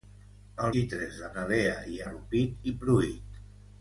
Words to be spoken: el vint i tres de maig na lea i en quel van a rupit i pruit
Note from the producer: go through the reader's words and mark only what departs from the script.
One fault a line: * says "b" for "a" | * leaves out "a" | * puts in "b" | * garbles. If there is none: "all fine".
* leaves out "vint"
* leaves out "maig"
* leaves out "en quel van"